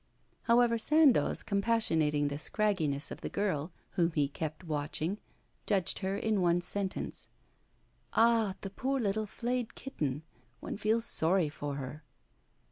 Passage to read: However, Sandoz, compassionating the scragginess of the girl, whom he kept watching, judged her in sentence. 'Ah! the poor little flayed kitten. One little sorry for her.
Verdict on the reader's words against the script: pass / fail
fail